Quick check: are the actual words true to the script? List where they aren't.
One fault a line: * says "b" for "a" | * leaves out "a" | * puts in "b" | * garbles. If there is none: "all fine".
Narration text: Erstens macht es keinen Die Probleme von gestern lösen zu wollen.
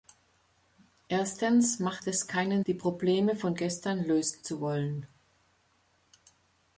all fine